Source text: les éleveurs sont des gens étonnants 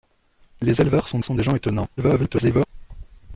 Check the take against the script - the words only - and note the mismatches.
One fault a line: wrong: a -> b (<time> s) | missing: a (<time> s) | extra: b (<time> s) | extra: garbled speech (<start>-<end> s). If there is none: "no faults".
extra: sont (1.2 s)
extra: garbled speech (2.0-2.7 s)